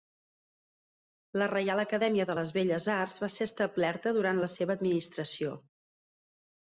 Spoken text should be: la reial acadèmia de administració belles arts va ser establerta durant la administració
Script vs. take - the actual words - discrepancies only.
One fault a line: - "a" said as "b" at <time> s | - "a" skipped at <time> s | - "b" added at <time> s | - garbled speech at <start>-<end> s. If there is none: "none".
- "administració" said as "les" at 2.4 s
- "seva" added at 4.5 s